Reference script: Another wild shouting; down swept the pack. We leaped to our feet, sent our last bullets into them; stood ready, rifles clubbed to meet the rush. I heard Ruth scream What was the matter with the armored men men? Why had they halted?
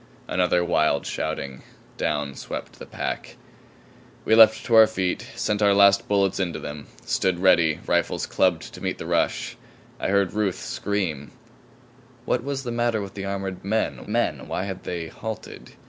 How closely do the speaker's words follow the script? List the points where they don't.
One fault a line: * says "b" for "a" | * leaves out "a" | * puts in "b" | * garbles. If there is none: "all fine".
all fine